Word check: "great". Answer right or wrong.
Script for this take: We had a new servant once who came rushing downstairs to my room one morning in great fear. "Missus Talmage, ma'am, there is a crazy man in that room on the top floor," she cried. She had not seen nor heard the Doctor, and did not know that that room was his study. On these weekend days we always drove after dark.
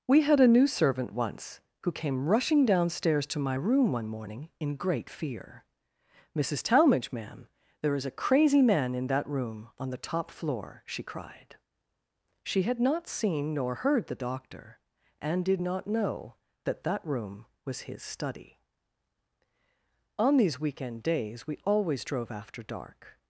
right